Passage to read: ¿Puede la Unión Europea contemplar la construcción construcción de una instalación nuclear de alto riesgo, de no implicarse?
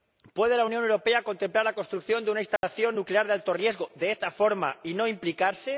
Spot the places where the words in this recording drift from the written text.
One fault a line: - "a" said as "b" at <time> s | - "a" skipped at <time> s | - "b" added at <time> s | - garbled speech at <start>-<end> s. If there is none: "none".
- "construcción" skipped at 2.2 s
- "esta forma y" added at 4.1 s